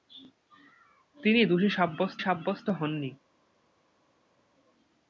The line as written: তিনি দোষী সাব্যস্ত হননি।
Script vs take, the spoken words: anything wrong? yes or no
yes